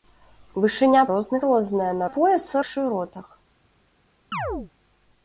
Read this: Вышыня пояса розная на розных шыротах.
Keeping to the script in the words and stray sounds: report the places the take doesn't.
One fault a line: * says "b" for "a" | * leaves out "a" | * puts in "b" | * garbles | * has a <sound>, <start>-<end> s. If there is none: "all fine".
* says "розных" for "пояса"
* says "пояса" for "розных"
* has a chirp, 4.3-4.7 s